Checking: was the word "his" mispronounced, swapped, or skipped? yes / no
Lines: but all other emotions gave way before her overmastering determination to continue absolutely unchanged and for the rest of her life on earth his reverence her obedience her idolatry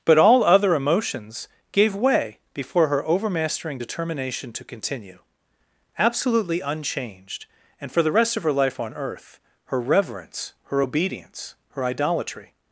yes